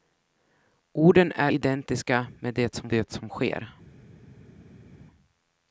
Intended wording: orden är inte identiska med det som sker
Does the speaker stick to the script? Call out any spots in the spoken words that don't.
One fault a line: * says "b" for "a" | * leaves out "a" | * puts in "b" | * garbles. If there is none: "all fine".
* leaves out "inte"
* puts in "det som"